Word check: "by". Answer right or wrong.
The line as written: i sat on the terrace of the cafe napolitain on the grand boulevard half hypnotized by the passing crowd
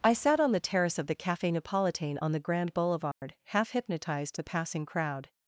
wrong